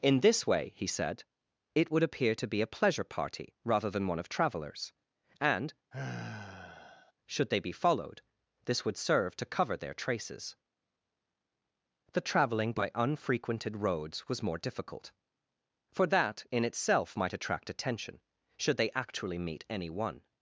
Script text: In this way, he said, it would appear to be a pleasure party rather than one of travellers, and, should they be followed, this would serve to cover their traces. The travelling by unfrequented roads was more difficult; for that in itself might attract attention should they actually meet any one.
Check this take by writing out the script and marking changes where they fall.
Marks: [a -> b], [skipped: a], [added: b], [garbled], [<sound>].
In this way, he said, it would appear to be a pleasure party rather than one of travellers, and, [sigh] should they be followed, this would serve to cover their traces. The travelling by unfrequented roads was more difficult; for that in itself might attract attention should they actually meet any one.